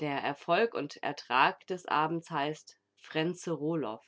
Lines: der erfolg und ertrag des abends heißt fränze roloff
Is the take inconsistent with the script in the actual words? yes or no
no